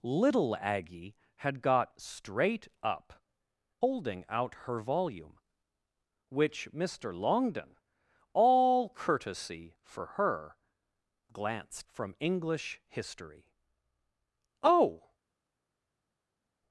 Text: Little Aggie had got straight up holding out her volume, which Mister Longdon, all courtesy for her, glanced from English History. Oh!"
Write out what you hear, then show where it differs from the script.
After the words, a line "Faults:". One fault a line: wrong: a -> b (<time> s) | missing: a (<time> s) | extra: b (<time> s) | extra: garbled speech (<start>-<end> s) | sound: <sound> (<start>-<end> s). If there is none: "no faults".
Little Aggie had got straight up holding out her volume, which Mister Longdon, all courtesy for her, glanced from English History. Oh!"
Faults:
no faults